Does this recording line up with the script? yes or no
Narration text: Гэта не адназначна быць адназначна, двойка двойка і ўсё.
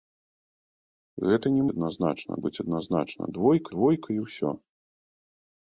yes